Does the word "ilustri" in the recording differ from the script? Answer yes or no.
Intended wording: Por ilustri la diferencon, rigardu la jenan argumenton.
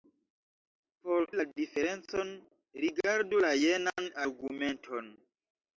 yes